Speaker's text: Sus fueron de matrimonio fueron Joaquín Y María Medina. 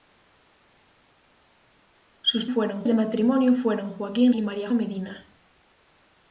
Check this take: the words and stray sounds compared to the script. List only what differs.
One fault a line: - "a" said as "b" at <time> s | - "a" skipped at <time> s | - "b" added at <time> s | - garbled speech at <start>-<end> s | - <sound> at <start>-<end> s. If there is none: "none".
none